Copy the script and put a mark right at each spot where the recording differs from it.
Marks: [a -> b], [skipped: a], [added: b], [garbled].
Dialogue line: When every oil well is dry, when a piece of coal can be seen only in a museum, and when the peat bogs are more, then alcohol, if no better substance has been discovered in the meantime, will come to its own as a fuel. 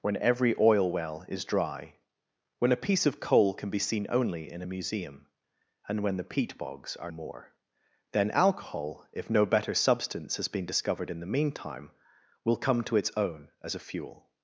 When every oil well is dry, when a piece of coal can be seen only in a museum, and when the peat bogs are more, then alcohol, if no better substance has been discovered in the meantime, will come to its own as a fuel.